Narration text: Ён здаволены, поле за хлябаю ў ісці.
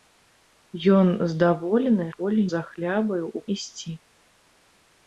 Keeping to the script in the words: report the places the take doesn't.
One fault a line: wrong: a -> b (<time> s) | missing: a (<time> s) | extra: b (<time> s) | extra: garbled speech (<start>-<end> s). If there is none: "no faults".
no faults